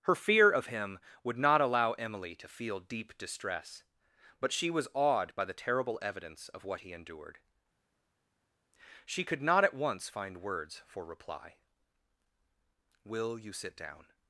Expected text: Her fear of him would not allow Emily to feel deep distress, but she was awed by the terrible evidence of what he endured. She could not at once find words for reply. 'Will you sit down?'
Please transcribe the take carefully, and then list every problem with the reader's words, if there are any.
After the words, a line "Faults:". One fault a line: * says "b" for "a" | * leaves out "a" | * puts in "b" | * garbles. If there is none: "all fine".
Her fear of him would not allow Emily to feel deep distress, but she was awed by the terrible evidence of what he endured. She could not at once find words for reply. 'Will you sit down?'
Faults:
all fine